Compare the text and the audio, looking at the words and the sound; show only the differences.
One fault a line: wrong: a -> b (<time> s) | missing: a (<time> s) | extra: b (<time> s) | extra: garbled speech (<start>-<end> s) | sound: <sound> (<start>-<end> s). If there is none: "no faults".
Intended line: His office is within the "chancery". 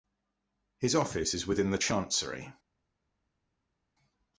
no faults